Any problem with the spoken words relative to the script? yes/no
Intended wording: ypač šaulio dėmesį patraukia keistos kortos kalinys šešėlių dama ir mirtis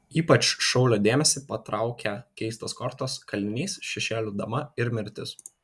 no